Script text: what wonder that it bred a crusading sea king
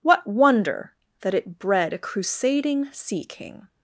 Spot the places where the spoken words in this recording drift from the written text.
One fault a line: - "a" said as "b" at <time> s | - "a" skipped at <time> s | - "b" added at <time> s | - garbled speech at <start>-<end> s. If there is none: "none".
none